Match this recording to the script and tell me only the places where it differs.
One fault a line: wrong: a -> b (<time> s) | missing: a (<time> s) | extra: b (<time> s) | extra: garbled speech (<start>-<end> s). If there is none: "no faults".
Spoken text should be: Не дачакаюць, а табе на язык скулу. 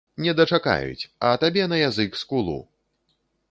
no faults